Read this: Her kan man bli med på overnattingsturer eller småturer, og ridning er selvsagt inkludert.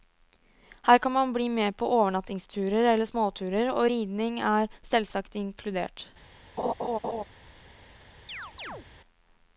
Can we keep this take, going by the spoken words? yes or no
yes